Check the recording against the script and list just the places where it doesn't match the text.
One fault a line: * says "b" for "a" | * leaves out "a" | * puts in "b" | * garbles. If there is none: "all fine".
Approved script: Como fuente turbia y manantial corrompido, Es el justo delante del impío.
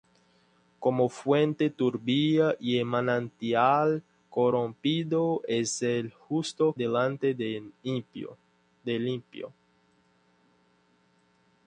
all fine